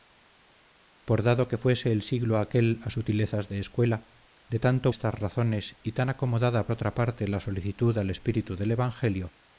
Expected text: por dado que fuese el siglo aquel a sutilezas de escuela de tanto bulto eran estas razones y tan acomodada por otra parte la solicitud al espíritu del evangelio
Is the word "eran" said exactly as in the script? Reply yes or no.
no